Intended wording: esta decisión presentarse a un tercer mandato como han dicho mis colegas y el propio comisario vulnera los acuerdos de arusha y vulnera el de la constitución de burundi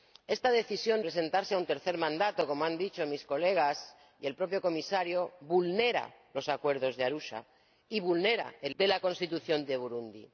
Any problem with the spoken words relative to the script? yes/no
no